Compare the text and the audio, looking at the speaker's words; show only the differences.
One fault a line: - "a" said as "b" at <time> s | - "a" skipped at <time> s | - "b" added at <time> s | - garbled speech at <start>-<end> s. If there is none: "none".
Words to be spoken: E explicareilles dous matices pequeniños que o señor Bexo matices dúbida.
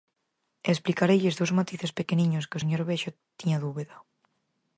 - "matices" said as "tiña" at 3.4 s